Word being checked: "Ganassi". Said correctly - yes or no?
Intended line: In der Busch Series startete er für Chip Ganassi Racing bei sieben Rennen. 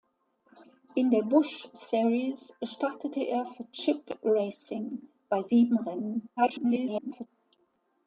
no